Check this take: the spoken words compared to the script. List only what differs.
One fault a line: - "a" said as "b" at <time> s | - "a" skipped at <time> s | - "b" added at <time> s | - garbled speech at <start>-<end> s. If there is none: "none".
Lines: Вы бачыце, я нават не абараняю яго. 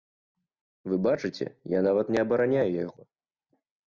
none